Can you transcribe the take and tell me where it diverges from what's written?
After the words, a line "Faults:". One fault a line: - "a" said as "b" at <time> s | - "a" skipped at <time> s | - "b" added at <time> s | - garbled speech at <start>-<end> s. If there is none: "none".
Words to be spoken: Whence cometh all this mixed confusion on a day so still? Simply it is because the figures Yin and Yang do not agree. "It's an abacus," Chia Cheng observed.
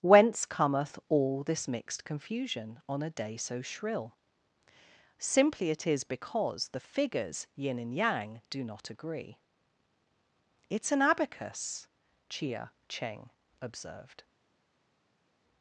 Whence cometh all this mixed confusion on a day so shrill? Simply it is because the figures Yin and Yang do not agree. "It's an abacus," Chia Cheng observed.
Faults:
- "still" said as "shrill" at 3.6 s